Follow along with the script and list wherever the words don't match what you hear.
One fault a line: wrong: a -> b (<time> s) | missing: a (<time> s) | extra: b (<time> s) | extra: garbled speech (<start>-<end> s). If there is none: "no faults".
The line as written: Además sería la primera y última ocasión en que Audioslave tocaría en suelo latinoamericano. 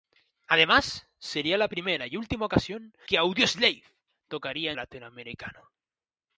missing: en (3.0 s)
missing: en suelo (4.7 s)